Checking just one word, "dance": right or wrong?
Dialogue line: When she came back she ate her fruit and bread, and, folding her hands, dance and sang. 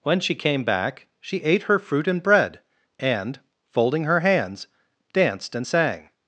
wrong